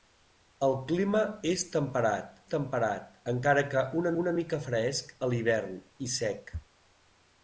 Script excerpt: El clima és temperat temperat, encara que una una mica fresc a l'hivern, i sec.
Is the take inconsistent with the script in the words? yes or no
no